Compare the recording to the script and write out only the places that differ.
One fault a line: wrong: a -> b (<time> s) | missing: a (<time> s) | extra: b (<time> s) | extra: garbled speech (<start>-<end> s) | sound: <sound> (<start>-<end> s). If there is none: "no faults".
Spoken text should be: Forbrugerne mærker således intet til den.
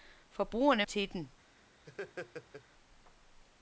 missing: mærker således intet (0.9 s)
sound: laugh (1.8-2.7 s)